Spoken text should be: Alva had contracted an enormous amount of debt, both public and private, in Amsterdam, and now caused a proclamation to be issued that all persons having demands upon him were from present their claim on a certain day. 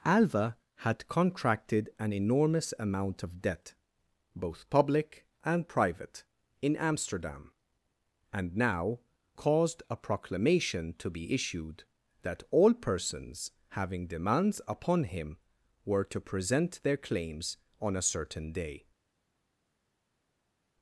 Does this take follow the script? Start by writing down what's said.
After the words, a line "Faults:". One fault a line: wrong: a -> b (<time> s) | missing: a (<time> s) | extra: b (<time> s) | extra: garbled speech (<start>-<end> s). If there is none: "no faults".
Alva had contracted an enormous amount of debt, both public and private, in Amsterdam, and now caused a proclamation to be issued that all persons having demands upon him were to present their claims on a certain day.
Faults:
wrong: from -> to (16.0 s)
wrong: claim -> claims (17.0 s)